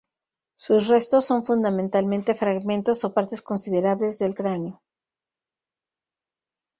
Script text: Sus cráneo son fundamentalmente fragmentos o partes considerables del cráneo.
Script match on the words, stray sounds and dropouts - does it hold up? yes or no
no